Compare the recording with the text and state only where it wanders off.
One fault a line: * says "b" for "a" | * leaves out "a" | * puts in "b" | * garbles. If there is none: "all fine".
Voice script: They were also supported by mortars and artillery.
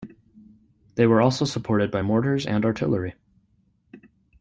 all fine